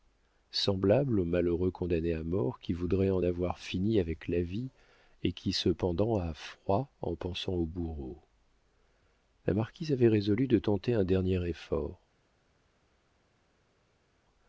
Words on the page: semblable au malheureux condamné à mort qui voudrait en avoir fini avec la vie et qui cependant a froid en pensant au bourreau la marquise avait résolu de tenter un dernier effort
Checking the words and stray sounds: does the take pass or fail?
pass